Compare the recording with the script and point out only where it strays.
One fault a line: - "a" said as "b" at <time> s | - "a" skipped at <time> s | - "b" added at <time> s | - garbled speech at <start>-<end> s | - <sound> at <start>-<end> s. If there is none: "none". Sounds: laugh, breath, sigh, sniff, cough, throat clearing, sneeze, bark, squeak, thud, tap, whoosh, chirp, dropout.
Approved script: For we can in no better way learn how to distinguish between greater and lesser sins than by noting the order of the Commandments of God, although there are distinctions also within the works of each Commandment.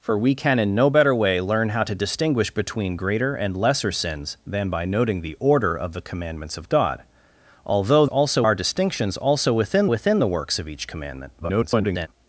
- "there" said as "also" at 8.1 s
- "within" added at 9.9 s
- garbled speech at 11.4-12.1 s